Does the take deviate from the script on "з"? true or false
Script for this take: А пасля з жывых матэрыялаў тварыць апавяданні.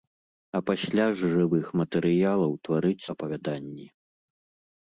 false